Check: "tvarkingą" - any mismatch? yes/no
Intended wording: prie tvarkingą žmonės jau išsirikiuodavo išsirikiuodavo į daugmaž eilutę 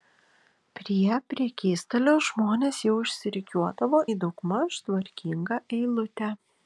yes